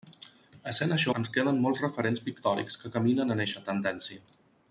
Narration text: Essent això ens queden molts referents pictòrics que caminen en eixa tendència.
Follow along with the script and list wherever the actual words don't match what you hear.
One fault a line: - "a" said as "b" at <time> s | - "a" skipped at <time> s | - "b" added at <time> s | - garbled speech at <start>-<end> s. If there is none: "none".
none